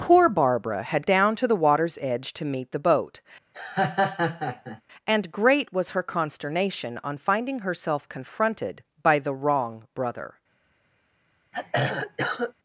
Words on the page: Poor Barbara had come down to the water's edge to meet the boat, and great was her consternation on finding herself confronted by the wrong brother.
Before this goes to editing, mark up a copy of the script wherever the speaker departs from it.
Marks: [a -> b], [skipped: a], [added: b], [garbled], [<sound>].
Poor Barbara had [skipped: come] down to the water's edge to meet the boat, [laugh] and great was her consternation on finding herself confronted by the wrong brother. [throat clearing]